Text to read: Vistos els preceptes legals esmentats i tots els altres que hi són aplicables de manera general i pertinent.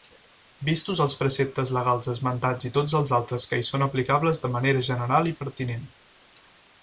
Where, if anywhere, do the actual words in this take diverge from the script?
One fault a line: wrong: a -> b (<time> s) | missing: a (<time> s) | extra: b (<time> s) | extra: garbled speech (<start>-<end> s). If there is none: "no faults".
no faults